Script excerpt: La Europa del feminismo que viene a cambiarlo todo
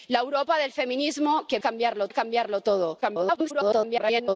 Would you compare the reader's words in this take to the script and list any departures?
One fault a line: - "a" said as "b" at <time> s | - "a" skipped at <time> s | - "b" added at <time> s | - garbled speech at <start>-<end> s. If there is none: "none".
- "viene" said as "cambiarlo" at 1.6 s
- garbled speech at 3.0-4.4 s